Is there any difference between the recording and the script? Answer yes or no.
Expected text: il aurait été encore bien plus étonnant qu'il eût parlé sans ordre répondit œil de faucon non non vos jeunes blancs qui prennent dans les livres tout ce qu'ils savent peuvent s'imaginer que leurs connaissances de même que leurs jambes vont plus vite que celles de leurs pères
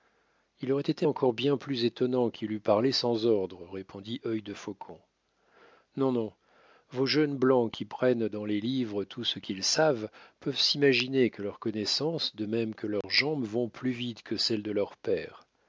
no